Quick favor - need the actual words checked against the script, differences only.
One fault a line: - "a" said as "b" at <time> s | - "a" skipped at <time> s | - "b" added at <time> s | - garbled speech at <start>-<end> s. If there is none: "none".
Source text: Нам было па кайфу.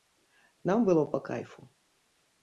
none